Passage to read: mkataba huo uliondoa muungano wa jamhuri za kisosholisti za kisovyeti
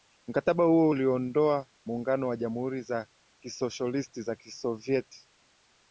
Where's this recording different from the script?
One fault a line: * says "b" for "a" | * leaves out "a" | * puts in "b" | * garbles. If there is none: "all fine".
all fine